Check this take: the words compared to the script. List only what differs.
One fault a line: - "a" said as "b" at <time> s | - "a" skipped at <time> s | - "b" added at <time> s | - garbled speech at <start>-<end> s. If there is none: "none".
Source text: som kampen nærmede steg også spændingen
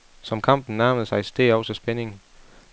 - "sig" added at 1.0 s